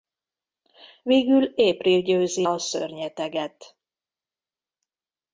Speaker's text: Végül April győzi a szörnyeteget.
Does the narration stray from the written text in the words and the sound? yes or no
no